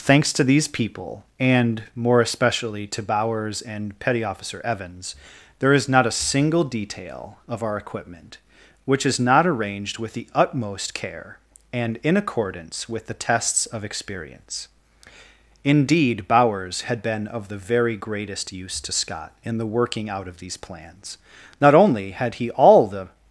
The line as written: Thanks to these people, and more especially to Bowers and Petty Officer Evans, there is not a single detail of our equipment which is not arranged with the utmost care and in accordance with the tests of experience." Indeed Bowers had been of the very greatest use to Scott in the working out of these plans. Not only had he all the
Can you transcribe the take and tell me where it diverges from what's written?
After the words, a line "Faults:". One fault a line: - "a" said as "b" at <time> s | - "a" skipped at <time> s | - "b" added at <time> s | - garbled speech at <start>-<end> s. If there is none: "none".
Thanks to these people, and more especially to Bowers and Petty Officer Evans, there is not a single detail of our equipment which is not arranged with the utmost care and in accordance with the tests of experience." Indeed Bowers had been of the very greatest use to Scott in the working out of these plans. Not only had he all the
Faults:
none